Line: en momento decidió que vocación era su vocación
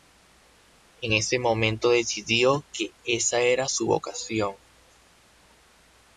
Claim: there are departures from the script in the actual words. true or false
true